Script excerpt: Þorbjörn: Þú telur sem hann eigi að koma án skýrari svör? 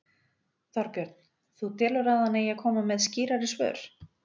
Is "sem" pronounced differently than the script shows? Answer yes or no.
yes